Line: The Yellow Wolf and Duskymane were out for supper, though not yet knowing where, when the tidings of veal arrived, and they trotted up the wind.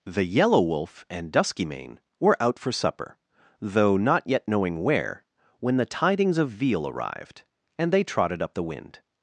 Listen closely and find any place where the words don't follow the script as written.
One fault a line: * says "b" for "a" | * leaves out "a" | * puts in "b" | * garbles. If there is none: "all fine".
all fine